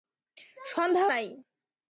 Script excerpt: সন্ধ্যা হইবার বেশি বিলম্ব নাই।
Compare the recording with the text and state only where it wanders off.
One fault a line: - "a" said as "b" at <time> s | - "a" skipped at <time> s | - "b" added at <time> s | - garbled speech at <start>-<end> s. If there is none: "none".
- "হইবার বেশি বিলম্ব" skipped at 1.1 s